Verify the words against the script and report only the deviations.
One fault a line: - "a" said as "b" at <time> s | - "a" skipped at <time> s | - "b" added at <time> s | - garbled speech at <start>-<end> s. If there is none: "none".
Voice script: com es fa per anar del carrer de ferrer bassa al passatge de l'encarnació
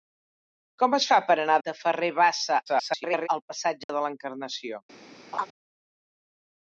- "del carrer" skipped at 1.6 s
- garbled speech at 2.7-3.3 s